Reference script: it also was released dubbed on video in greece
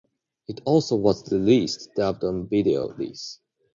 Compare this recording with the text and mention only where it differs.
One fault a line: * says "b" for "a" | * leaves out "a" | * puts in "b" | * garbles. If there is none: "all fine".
* leaves out "in"